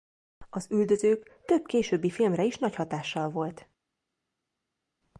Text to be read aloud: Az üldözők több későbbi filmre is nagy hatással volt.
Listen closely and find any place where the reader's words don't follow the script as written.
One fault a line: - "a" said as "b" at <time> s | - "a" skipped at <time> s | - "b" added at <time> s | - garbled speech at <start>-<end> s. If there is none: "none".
none